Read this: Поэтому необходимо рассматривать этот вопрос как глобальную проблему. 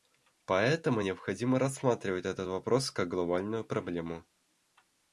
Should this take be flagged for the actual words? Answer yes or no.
no